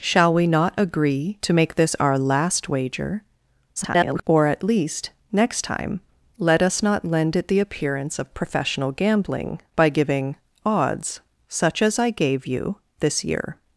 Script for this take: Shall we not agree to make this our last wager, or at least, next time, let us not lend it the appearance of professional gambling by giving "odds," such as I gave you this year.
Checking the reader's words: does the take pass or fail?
fail